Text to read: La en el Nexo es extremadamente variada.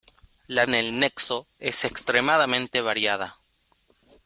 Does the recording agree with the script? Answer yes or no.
yes